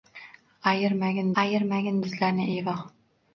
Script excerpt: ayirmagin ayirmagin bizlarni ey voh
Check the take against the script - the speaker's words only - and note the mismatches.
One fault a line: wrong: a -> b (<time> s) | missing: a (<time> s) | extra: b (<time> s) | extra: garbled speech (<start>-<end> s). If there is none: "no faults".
no faults